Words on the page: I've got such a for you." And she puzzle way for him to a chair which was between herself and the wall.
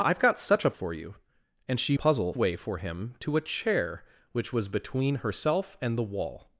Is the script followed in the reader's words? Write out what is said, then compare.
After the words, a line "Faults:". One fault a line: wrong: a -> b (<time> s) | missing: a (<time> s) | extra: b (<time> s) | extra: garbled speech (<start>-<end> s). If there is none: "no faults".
I've got such a for you." And she puzzle way for him to a chair which was between herself and the wall.
Faults:
no faults